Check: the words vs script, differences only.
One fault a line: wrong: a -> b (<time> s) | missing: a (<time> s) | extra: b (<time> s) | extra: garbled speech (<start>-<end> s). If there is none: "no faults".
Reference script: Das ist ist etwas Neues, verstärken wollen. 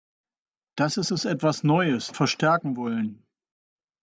no faults